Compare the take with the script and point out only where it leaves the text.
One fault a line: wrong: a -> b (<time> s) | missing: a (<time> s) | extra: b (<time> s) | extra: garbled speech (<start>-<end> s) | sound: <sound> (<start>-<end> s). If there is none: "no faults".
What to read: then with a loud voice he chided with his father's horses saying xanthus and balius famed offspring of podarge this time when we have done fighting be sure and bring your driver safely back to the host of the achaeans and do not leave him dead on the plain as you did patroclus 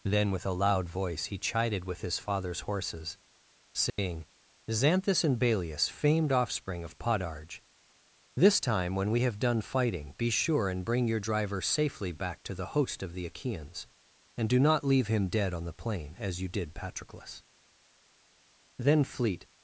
sound: dropout (3.9-4.0 s)
extra: then fleet (18.8 s)